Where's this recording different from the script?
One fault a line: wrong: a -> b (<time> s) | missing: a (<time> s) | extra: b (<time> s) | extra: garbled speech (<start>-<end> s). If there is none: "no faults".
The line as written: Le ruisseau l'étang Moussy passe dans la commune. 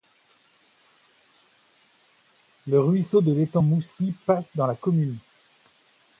extra: de (3.2 s)